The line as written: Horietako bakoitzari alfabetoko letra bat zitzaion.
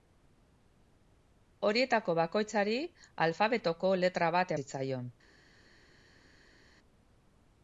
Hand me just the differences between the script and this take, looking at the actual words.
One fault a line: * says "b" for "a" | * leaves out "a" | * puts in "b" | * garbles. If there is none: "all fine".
all fine